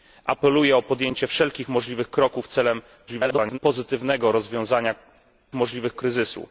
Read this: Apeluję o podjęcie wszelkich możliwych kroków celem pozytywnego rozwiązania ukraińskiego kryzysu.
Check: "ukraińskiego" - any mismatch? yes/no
yes